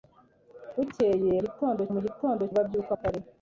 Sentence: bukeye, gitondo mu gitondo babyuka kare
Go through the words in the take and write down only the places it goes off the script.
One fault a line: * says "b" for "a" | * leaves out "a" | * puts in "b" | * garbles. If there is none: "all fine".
all fine